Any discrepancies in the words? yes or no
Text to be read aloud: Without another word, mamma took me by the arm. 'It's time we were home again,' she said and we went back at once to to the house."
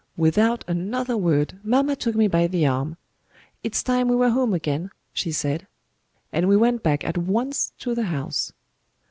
yes